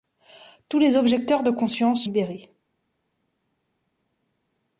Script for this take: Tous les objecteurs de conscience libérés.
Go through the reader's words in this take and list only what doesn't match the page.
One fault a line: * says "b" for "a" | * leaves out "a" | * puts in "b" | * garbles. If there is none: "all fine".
all fine